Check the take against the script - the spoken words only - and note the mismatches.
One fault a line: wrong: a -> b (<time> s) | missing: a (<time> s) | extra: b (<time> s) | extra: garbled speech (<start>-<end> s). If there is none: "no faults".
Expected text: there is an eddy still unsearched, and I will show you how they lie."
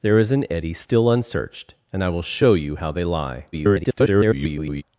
extra: garbled speech (3.5-4.8 s)